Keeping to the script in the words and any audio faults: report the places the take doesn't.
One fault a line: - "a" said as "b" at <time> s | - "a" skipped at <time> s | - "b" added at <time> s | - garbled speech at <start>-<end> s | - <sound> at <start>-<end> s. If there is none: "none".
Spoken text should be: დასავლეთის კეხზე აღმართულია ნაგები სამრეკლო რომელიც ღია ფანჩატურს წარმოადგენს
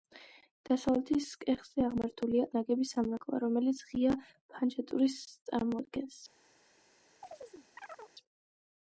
- chirp at 7.2-8.1 s